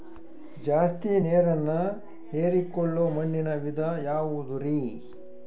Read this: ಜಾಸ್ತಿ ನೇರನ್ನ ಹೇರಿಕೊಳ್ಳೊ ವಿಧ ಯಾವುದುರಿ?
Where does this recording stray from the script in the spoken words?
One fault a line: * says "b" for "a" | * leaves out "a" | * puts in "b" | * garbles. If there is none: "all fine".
* puts in "ಮಣ್ಣಿನ"